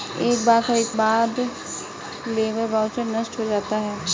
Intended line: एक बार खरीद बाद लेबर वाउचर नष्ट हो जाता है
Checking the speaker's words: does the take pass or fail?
pass